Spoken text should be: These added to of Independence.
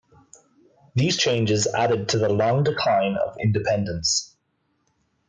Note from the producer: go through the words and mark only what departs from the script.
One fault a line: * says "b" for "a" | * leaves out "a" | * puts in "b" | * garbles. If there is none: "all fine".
* puts in "changes"
* puts in "the long decline"